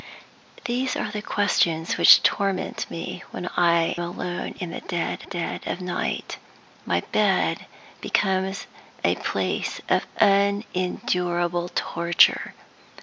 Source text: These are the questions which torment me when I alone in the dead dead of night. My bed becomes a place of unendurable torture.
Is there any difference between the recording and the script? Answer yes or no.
no